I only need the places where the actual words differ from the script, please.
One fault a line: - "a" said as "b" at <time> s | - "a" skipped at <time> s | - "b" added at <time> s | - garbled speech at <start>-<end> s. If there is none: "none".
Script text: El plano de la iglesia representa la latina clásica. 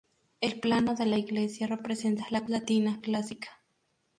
none